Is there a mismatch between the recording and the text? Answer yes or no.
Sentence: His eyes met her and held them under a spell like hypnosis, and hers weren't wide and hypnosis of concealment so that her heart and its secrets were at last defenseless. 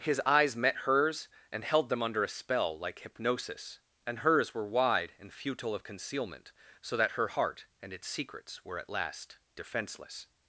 yes